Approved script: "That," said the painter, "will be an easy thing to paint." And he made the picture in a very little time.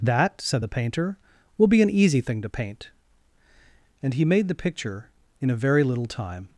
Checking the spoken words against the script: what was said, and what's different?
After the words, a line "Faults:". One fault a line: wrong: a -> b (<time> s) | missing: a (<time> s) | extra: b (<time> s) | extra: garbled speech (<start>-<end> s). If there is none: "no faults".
"That," said the painter, "will be an easy thing to paint." And he made the picture in a very little time.
Faults:
no faults